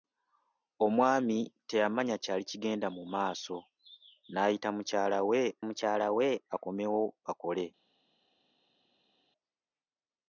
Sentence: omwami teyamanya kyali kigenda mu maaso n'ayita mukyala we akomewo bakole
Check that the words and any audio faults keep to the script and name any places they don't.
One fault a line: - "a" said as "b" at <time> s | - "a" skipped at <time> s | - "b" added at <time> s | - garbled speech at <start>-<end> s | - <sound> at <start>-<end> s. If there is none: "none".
- "mukyala we" added at 5.7 s